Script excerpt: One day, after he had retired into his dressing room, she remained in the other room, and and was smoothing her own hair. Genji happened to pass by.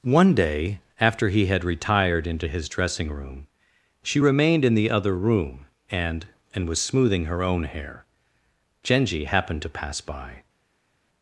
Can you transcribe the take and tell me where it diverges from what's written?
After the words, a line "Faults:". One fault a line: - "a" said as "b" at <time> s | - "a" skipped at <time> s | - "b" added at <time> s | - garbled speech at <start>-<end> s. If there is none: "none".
One day, after he had retired into his dressing room, she remained in the other room, and and was smoothing her own hair. Genji happened to pass by.
Faults:
none